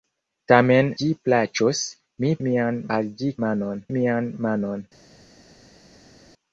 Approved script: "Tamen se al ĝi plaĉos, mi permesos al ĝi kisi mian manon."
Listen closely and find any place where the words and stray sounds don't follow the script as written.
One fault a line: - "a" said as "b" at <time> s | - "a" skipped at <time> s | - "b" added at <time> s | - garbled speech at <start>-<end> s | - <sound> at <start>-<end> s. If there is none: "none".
- "se al" skipped at 0.9 s
- "permesos" said as "mian" at 2.5 s
- "kisi" said as "manon" at 3.5 s